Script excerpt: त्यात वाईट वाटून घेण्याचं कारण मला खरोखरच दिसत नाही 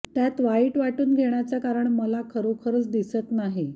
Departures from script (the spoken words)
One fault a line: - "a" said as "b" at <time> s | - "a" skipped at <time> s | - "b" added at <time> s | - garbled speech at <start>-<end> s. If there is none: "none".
none